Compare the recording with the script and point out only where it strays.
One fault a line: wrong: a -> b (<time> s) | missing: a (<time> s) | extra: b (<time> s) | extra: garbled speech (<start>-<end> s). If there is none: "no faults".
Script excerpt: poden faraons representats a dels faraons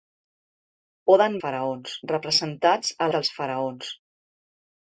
no faults